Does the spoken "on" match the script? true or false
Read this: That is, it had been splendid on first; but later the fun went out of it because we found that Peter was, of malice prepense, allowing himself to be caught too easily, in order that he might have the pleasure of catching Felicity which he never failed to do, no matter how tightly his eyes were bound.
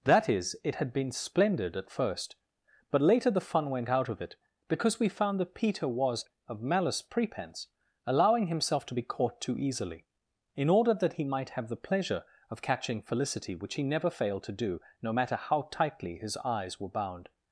false